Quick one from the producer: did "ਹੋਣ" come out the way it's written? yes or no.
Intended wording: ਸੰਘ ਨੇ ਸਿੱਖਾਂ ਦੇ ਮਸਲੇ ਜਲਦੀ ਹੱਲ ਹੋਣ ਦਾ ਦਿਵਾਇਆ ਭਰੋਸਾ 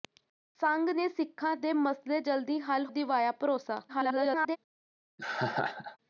no